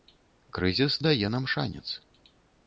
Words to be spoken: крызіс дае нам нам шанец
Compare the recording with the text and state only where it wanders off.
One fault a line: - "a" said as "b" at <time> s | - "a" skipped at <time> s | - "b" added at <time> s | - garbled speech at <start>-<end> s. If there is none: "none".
- "нам" skipped at 1.5 s